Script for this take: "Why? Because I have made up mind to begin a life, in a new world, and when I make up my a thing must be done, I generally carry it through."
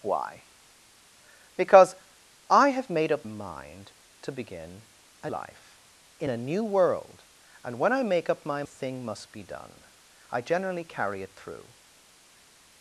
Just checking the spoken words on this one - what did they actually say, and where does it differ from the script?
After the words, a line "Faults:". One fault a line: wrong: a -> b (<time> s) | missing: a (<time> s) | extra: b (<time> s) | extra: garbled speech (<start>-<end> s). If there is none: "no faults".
"Why? Because I have made up mind to begin a life, in a new world, and when I make up my a thing must be done, I generally carry it through."
Faults:
no faults